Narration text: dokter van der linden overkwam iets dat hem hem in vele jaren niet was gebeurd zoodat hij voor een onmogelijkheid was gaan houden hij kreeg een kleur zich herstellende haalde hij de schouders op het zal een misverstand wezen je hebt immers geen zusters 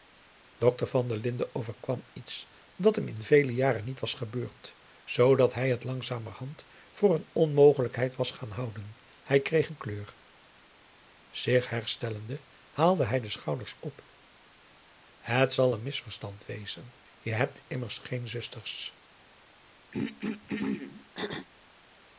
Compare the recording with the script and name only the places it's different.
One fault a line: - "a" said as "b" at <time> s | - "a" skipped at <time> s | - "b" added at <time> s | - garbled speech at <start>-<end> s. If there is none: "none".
- "hem" skipped at 3.1 s
- "het langzamerhand" added at 5.7 s